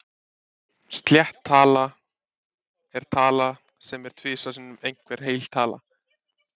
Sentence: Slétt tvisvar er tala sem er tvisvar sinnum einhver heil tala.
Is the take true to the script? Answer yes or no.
no